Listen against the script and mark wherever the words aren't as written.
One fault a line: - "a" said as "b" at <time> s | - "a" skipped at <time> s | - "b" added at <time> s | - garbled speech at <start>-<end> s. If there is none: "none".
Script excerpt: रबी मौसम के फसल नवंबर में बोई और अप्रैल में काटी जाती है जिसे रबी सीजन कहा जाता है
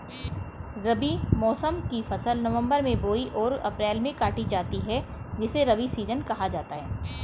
- "के" said as "की" at 1.9 s